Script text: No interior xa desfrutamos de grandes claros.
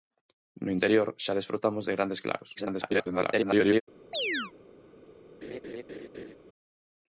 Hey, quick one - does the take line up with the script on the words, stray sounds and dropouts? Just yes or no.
no